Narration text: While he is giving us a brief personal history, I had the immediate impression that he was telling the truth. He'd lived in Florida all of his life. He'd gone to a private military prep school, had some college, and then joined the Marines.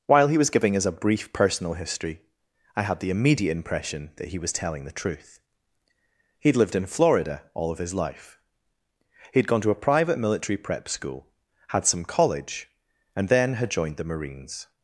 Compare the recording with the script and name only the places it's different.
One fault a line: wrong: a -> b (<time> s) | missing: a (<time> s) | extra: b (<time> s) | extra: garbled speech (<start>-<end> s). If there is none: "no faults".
wrong: is -> was (0.4 s)
extra: had (13.5 s)